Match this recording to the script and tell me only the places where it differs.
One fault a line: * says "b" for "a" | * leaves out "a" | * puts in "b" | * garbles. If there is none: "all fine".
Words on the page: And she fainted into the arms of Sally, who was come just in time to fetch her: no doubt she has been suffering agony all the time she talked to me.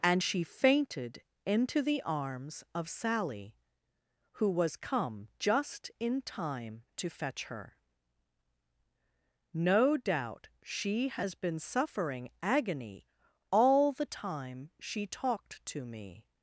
all fine